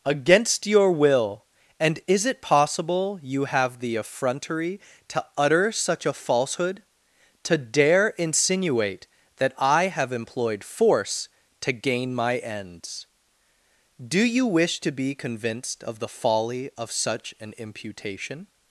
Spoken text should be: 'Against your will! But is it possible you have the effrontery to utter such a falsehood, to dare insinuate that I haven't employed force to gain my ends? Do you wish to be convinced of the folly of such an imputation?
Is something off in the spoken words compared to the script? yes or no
yes